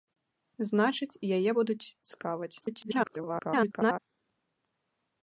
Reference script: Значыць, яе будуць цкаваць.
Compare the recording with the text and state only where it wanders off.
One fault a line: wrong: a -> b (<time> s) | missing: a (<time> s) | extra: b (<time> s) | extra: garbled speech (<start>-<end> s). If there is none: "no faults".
extra: garbled speech (2.6-4.0 s)